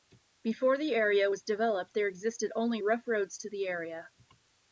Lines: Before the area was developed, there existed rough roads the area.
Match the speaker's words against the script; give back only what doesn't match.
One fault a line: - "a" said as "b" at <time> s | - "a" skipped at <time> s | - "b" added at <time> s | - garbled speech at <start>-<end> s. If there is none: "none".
- "only" added at 2.5 s
- "to" added at 3.4 s